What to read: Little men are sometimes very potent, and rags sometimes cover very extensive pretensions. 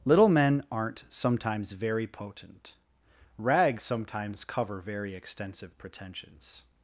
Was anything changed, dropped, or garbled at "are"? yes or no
yes